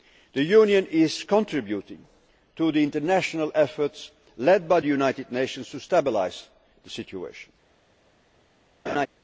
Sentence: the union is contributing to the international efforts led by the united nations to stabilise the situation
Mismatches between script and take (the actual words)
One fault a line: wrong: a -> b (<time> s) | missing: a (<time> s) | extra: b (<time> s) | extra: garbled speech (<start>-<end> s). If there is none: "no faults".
no faults